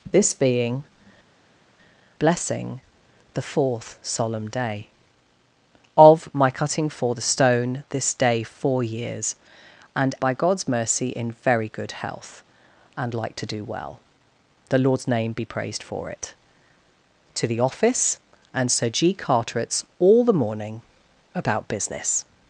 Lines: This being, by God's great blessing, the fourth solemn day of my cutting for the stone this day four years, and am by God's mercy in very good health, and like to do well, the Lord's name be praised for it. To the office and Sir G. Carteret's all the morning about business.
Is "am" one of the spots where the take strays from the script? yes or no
yes